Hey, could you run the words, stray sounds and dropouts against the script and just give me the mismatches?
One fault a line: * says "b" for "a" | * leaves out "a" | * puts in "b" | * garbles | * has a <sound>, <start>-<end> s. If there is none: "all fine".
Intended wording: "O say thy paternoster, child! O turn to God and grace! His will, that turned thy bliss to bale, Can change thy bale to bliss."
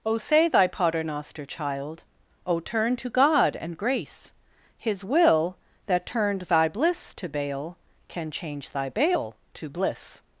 all fine